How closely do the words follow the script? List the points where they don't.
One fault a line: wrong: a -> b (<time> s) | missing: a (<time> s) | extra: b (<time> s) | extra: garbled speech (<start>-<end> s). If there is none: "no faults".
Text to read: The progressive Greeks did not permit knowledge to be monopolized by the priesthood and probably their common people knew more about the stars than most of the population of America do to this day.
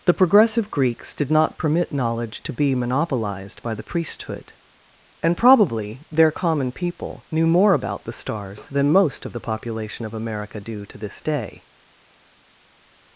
no faults